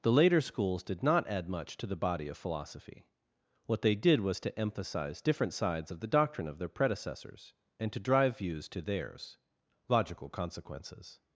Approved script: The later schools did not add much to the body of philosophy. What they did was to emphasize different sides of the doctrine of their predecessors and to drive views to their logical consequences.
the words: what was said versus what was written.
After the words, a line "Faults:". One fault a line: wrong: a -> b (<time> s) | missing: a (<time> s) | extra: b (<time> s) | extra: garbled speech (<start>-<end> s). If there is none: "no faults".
The later schools did not add much to the body of philosophy. What they did was to emphasize different sides of the doctrine of their predecessors and to drive views to theirs logical consequences.
Faults:
wrong: their -> theirs (8.8 s)